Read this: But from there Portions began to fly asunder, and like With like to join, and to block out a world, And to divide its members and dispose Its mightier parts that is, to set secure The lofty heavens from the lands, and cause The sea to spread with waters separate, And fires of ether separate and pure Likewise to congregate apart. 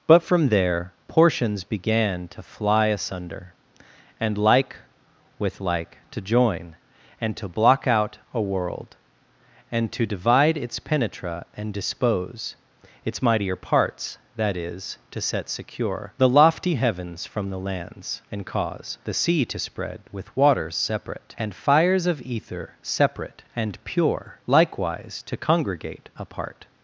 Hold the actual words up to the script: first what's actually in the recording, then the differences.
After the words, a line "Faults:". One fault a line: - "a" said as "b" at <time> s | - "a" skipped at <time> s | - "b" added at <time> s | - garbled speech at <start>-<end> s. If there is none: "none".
But from there Portions began to fly asunder, and like With like to join, and to block out a world, And to divide its penetra and dispose Its mightier parts that is, to set secure The lofty heavens from the lands, and cause The sea to spread with waters separate, And fires of ether separate and pure Likewise to congregate apart.
Faults:
- "members" said as "penetra" at 10.8 s